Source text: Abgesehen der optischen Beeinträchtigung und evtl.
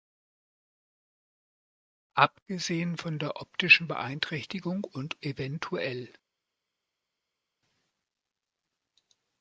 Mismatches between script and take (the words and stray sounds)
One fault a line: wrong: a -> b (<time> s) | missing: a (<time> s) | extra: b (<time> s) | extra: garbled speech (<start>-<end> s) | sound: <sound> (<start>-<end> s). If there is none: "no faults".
extra: von (2.9 s)